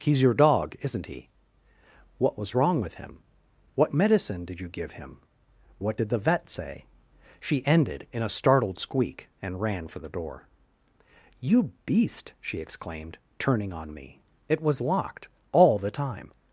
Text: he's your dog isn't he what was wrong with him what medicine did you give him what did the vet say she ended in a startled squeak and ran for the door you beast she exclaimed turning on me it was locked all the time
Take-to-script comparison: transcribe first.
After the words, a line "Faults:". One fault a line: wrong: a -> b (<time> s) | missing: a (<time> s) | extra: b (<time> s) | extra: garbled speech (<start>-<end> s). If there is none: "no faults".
he's your dog isn't he what was wrong with him what medicine did you give him what did the vet say she ended in a startled squeak and ran for the door you beast she exclaimed turning on me it was locked all the time
Faults:
no faults